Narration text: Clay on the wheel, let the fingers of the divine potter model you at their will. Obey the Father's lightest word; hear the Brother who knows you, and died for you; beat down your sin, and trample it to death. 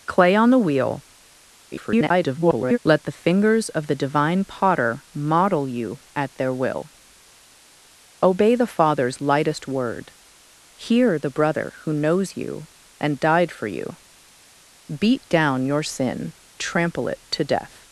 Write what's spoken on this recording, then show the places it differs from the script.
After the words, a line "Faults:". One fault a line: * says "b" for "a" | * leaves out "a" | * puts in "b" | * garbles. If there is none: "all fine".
Clay on the wheel, [garbled] let the fingers of the divine potter model you at their will. Obey the Father's lightest word; hear the Brother who knows you, and died for you; beat down your sin, trample it to death.
Faults:
* garbles
* leaves out "and"